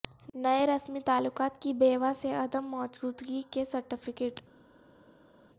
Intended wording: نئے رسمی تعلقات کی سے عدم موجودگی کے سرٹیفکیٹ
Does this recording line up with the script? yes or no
no